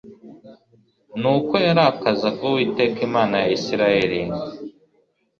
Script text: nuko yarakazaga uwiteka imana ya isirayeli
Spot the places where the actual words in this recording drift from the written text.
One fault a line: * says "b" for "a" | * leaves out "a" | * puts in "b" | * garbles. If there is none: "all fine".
all fine